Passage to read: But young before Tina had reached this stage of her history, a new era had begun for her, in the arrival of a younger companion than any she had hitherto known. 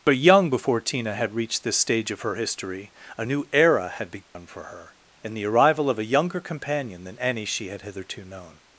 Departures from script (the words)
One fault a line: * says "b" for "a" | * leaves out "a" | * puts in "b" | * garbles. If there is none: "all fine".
all fine